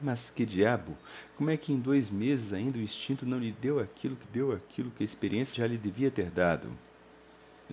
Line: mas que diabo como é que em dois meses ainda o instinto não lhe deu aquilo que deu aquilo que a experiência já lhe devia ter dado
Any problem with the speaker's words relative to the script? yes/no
no